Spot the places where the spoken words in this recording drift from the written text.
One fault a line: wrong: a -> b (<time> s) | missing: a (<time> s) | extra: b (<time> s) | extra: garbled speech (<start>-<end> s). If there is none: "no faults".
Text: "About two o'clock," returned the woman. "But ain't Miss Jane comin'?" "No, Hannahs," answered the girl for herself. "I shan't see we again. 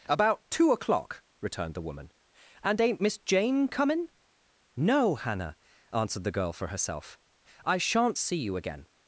wrong: But -> And (2.6 s)
wrong: Hannahs -> Hannah (5.2 s)
wrong: we -> you (8.4 s)